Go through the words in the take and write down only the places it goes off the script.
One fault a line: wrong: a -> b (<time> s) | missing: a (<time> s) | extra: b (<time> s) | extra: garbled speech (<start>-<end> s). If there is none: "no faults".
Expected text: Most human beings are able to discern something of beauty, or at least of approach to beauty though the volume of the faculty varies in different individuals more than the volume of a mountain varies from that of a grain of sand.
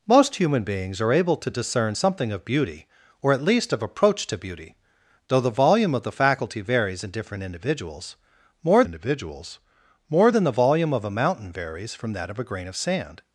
extra: individuals more (8.8 s)